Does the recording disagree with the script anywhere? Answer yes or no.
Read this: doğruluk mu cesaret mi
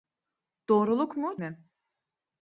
yes